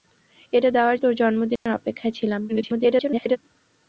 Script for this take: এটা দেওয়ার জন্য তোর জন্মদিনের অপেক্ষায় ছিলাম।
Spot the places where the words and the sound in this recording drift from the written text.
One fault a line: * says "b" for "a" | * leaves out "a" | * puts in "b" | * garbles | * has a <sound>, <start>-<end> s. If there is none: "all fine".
* leaves out "জন্য"
* has a dropout, 1.6-1.7 s
* garbles